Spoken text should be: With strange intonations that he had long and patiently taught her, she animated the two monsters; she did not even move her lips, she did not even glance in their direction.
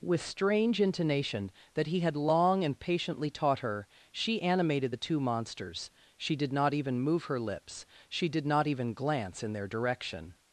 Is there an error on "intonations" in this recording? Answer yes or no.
yes